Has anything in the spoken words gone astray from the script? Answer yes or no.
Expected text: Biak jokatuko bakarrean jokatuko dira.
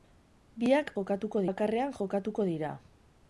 no